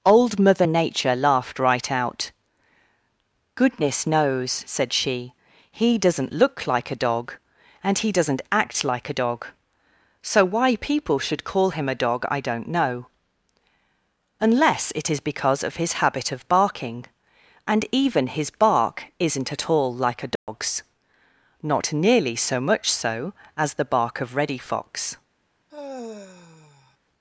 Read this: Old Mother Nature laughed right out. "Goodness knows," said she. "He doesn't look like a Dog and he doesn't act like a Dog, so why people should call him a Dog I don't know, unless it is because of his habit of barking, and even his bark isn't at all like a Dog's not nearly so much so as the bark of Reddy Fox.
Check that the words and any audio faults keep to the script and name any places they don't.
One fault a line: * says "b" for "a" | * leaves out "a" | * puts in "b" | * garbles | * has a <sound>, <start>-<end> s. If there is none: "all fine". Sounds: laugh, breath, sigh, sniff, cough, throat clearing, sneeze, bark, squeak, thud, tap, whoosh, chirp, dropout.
* has a dropout, 20.4-20.5 s
* has a sigh, 25.7-27.0 s